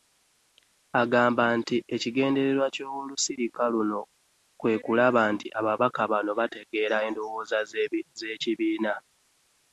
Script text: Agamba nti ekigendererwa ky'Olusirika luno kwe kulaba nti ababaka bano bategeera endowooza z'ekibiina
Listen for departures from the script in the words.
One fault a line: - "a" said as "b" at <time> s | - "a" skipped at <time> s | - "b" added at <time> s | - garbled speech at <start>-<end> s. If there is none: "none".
none